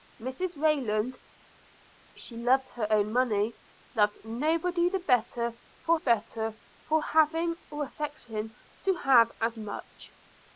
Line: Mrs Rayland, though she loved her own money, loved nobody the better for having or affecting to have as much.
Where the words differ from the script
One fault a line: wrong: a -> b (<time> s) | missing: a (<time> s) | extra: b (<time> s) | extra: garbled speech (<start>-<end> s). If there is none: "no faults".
missing: though (1.2 s)
extra: better for (5.9 s)